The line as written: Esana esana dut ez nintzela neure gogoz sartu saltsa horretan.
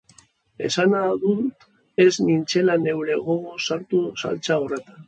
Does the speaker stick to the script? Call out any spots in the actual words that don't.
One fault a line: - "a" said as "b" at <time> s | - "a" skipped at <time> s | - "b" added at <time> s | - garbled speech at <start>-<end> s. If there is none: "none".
- "esana" skipped at 1.0 s